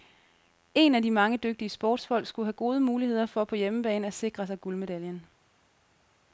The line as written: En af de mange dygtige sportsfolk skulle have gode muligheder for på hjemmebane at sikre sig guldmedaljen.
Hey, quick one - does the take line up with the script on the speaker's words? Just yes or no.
yes